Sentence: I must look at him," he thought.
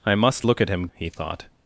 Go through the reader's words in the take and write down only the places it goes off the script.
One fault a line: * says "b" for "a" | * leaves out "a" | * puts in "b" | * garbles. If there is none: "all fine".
all fine